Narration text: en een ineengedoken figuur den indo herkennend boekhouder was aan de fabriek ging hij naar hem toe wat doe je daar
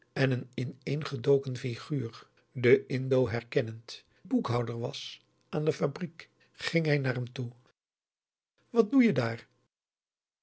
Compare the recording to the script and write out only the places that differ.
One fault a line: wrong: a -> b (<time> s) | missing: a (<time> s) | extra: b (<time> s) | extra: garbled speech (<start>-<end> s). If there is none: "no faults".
no faults